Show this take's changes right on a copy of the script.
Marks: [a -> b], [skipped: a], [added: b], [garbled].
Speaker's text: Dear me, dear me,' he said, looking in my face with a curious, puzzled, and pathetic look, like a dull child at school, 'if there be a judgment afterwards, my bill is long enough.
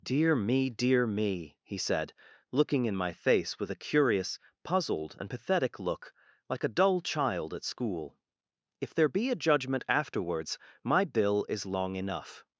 Dear me, dear me,' he said, looking in my face with a curious, puzzled, and pathetic look, like a dull child at school, 'if there be a judgment afterwards, my bill is long enough.